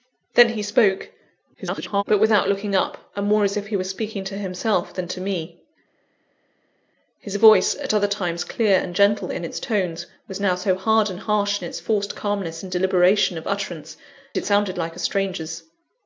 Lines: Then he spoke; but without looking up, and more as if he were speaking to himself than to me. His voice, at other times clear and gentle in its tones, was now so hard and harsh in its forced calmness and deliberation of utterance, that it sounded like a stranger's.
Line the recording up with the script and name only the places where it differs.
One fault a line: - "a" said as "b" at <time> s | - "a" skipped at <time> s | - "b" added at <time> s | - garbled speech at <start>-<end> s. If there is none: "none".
- garbled speech at 1.5-2.0 s
- "that" skipped at 14.0 s